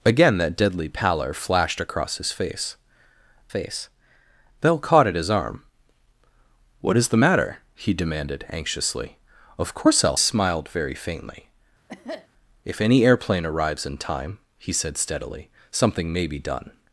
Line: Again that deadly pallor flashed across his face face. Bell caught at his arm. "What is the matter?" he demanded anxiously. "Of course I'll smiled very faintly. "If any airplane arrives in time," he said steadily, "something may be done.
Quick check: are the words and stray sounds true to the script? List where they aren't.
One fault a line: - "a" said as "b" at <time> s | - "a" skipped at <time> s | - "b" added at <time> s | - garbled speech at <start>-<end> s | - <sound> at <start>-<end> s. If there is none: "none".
- cough at 11.9-12.3 s